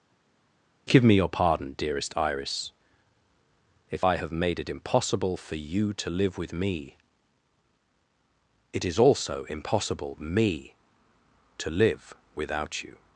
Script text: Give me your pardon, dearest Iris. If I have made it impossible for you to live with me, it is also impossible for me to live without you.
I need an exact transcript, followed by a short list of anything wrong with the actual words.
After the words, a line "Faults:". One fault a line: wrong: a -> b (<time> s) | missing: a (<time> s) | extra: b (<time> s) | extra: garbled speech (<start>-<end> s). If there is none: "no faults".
Give me your pardon, dearest Iris. If I have made it impossible for you to live with me, it is also impossible me to live without you.
Faults:
missing: for (10.1 s)